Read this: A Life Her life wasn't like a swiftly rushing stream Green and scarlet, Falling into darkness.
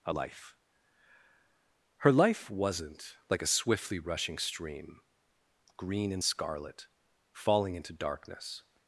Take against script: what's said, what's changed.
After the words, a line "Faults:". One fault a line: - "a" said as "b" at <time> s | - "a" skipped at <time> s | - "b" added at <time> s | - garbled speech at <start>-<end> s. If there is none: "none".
A Life Her life wasn't like a swiftly rushing stream Green and scarlet, Falling into darkness.
Faults:
none